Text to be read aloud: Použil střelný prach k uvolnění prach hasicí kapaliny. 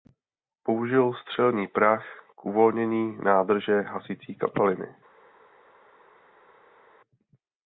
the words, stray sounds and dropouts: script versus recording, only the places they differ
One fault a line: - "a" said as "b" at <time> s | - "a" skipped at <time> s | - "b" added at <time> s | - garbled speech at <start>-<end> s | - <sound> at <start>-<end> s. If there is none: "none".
- "prach" said as "nádrže" at 3.2 s